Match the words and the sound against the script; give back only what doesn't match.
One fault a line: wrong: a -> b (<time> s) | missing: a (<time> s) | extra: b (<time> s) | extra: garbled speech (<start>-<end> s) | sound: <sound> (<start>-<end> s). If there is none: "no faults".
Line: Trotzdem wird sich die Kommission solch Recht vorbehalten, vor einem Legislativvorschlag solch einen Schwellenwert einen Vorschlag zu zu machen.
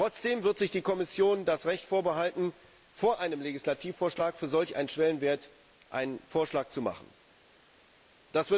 wrong: solch -> das (1.4 s)
extra: für (4.3 s)
missing: zu (6.8 s)